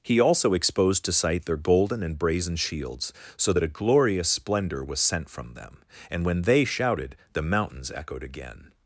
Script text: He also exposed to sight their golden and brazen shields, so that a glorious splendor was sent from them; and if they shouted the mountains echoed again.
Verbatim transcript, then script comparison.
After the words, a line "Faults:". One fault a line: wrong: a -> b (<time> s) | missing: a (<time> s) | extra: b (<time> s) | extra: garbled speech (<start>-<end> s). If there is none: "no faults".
He also exposed to sight their golden and brazen shields, so that a glorious splendor was sent from them; and when they shouted the mountains echoed again.
Faults:
wrong: if -> when (6.2 s)